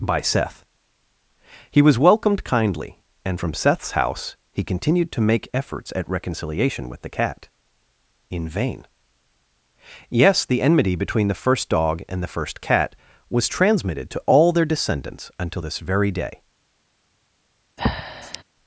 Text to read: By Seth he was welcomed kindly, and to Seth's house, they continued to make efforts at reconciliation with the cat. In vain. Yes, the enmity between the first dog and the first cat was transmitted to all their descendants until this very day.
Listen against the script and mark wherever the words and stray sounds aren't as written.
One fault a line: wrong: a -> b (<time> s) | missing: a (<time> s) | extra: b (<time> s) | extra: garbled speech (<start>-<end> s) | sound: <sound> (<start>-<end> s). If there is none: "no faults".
wrong: to -> from (3.4 s)
wrong: they -> he (4.5 s)
sound: breath (17.8-18.4 s)